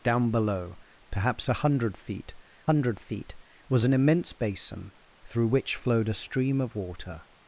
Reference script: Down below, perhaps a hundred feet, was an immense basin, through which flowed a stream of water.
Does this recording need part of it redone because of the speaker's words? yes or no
yes